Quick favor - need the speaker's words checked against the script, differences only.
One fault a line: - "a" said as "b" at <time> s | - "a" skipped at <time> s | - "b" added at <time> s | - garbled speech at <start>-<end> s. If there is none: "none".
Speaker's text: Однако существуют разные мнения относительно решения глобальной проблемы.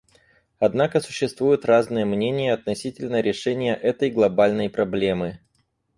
- "этой" added at 3.7 s